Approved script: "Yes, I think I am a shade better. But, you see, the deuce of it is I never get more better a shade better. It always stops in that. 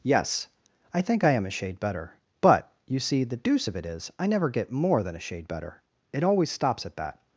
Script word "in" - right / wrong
wrong